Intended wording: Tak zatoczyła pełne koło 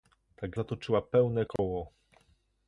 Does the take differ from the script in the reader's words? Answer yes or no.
no